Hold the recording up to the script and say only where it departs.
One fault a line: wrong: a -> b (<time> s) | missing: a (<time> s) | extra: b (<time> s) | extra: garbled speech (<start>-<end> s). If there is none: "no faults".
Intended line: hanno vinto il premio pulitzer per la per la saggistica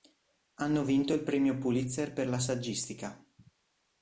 missing: per la (2.4 s)